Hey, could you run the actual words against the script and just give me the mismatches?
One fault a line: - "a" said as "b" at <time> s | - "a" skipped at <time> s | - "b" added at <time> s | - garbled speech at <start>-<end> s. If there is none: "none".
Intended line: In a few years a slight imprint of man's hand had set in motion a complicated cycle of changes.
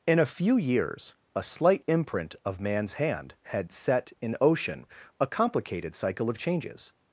- "motion" said as "ocean" at 4.4 s